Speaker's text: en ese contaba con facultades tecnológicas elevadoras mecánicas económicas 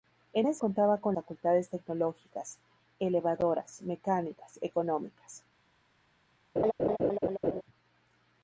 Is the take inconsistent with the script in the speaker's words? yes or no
no